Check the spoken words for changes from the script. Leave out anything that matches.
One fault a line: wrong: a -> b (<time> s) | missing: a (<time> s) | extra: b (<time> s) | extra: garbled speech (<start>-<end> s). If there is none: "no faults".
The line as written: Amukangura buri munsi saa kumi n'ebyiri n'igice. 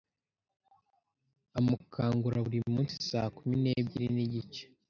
no faults